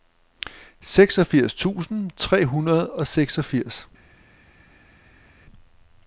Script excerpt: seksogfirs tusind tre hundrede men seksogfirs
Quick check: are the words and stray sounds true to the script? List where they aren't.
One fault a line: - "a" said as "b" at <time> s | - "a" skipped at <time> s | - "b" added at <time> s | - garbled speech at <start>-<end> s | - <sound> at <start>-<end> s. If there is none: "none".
- "men" said as "og" at 2.9 s